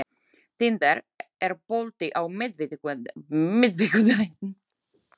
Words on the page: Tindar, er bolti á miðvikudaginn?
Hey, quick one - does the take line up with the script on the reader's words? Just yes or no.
yes